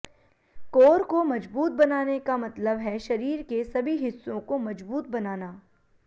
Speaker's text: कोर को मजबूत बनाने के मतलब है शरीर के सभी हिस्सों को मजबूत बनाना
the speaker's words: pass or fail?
fail